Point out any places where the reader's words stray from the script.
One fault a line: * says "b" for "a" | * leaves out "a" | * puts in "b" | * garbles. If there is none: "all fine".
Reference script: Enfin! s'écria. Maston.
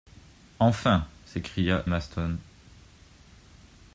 all fine